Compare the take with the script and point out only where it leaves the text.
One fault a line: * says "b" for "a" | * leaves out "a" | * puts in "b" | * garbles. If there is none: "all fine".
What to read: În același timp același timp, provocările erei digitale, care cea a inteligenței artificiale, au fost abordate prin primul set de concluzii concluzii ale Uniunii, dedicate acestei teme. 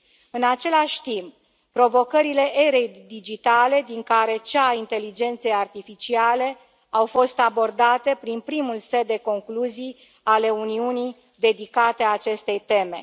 * leaves out "același timp"
* puts in "din"
* leaves out "concluzii"